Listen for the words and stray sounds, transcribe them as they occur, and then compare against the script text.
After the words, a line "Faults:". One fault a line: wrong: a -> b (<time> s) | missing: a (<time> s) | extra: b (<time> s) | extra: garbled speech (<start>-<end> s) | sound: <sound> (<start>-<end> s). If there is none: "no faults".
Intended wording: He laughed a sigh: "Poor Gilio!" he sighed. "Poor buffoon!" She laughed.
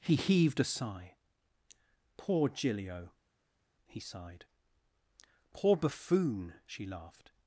He heaved a sigh: "Poor Gilio!" he sighed. "Poor buffoon!" She laughed.
Faults:
wrong: laughed -> heaved (0.1 s)